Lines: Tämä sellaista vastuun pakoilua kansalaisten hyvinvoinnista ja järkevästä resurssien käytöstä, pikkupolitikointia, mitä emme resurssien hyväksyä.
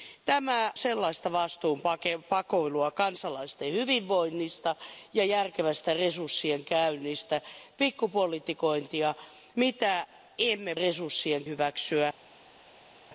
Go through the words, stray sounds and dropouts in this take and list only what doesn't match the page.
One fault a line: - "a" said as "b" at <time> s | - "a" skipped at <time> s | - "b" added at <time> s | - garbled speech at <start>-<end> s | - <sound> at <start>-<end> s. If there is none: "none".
none